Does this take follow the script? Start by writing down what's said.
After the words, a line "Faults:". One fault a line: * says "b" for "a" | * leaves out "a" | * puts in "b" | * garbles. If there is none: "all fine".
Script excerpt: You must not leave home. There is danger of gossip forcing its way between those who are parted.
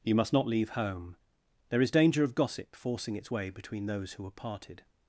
You must not leave home. There is danger of gossip forcing its way between those who are parted.
Faults:
all fine